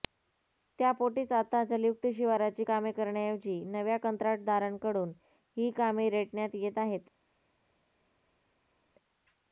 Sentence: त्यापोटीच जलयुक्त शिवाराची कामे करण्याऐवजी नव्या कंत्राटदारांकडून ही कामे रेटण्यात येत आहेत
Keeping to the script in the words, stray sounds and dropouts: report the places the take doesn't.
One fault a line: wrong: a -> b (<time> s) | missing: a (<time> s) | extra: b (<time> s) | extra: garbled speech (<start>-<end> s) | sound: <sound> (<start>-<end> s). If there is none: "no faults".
extra: आता (1.3 s)